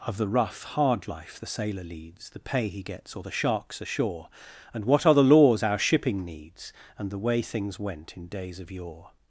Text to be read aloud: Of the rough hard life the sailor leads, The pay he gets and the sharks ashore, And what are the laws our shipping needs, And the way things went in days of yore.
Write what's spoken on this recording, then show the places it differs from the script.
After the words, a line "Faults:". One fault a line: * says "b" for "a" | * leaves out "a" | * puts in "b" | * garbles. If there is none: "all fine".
Of the rough hard life the sailor leads, The pay he gets or the sharks ashore, And what are the laws our shipping needs, And the way things went in days of yore.
Faults:
* says "or" for "and"